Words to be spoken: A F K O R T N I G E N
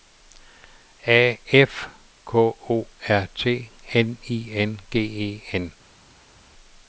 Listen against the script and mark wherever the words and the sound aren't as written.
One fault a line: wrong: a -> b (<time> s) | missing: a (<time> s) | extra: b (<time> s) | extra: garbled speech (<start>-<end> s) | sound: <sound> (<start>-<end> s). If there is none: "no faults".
extra: N (4.5 s)